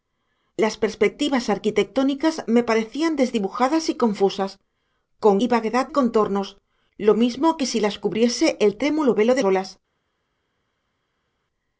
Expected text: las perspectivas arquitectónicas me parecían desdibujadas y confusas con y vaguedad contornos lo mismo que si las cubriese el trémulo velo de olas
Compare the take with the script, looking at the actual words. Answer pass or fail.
pass